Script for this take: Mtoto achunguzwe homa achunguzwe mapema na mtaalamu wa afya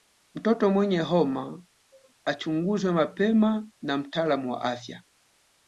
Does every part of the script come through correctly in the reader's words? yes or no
no